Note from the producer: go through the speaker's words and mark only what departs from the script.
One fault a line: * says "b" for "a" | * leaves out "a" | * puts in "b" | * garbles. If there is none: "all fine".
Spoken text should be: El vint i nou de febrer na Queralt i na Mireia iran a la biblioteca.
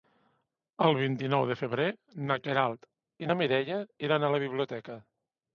all fine